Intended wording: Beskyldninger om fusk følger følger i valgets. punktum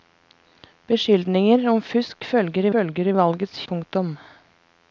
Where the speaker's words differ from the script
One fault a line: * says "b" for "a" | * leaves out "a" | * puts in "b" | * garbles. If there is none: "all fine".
all fine